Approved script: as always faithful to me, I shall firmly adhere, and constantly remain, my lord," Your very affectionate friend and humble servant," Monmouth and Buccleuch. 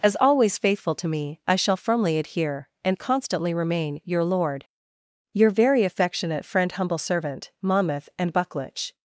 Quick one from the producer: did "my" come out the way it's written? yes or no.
no